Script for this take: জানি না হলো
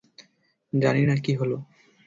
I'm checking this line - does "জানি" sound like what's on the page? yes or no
yes